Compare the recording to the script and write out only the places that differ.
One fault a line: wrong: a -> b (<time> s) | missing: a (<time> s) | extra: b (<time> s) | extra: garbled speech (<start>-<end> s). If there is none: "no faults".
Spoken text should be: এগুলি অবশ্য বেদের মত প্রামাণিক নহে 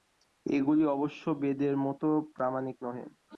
no faults